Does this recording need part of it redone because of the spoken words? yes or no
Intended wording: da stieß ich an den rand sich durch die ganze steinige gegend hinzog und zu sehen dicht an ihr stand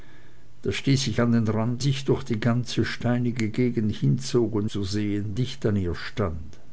no